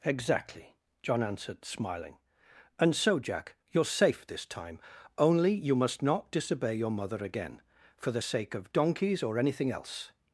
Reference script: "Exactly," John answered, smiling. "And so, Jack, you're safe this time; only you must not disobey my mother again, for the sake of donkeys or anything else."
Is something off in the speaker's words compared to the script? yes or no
yes